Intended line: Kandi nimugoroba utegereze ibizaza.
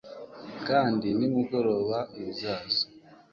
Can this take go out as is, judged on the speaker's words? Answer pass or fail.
fail